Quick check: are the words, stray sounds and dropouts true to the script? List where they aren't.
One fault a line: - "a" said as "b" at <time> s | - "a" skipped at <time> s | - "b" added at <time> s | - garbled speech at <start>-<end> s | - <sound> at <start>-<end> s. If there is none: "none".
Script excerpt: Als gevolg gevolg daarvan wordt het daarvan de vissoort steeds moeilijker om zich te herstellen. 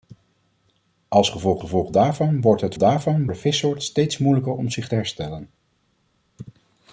none